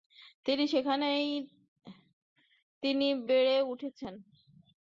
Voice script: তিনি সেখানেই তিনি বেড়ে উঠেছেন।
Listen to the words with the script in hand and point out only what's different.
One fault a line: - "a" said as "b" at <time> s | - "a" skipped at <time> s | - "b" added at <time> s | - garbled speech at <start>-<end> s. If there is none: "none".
none